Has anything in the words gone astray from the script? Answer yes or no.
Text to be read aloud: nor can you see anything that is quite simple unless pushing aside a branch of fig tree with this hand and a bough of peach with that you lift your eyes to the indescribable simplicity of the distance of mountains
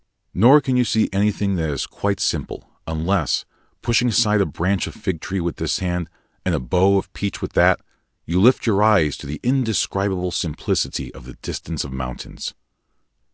no